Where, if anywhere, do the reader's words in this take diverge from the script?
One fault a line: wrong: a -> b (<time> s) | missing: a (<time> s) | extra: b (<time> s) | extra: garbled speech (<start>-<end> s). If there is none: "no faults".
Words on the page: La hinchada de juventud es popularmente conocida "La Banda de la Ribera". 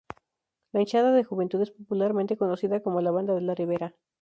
extra: como (2.8 s)